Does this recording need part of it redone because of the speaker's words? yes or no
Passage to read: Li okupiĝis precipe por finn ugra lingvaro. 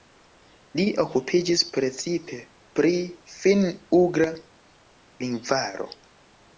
yes